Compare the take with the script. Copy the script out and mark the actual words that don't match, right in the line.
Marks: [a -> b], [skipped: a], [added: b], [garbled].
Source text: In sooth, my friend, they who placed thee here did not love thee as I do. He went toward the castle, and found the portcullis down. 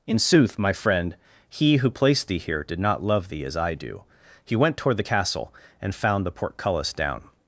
In sooth, my friend, [they -> he] who placed thee here did not love thee as I do. He went toward the castle, and found the portcullis down.